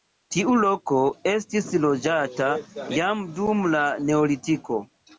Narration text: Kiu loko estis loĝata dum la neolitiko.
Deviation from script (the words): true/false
true